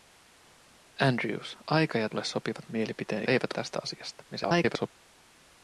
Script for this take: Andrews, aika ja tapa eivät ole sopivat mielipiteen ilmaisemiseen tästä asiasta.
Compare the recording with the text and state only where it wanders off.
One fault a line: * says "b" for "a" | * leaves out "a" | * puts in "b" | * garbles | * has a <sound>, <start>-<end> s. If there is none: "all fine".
* leaves out "tapa eivät"
* says "eivät" for "ilmaisemiseen"
* garbles